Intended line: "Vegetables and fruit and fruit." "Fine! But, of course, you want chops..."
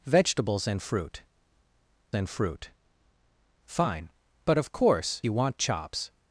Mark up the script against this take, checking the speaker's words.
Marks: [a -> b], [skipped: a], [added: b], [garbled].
"Vegetables and fruit and fruit." "Fine! But, of course, you want chops..."